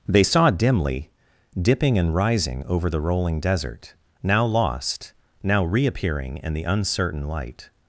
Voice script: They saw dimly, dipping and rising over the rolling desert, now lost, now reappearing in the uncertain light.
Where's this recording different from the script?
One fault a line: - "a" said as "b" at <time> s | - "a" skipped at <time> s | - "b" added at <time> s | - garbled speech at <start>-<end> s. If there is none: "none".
none